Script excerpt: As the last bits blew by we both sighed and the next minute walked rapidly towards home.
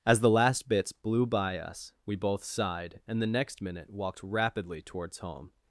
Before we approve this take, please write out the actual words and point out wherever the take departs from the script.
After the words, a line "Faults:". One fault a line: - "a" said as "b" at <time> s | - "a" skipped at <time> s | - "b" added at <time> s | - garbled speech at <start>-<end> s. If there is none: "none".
As the last bits blew by us, we both sighed and the next minute walked rapidly towards home.
Faults:
- "us" added at 1.6 s